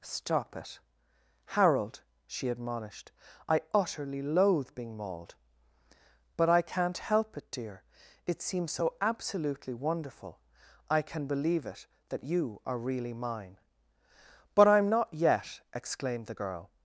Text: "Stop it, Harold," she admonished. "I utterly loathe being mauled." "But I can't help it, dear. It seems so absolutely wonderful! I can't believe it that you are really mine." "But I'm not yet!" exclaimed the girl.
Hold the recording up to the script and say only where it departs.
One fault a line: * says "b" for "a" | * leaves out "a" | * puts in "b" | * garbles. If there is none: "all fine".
* says "can" for "can't"